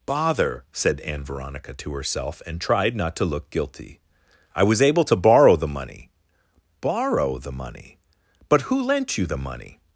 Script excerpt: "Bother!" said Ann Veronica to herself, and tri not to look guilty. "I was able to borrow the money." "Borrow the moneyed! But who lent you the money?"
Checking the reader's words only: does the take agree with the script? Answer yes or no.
no